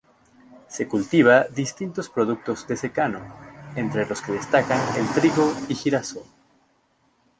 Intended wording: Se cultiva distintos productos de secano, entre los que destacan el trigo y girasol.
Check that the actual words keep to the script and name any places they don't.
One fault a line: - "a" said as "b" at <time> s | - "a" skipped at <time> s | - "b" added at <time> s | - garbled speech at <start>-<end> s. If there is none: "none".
none